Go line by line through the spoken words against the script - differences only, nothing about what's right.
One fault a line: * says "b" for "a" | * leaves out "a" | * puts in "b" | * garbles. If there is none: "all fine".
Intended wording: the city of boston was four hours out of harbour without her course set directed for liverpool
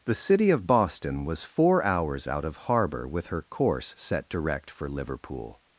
* says "with" for "without"
* says "direct" for "directed"